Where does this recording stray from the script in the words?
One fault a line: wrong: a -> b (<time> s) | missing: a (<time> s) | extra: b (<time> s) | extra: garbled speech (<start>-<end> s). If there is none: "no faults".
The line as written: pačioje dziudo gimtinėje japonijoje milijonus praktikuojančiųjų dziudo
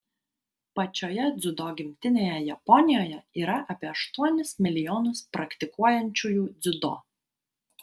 extra: yra apie aštuonis (3.4 s)